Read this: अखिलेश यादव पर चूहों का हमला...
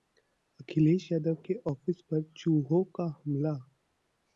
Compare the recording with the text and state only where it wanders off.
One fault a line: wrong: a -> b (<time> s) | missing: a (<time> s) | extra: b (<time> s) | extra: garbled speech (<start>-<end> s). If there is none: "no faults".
extra: के ऑफिस (1.4 s)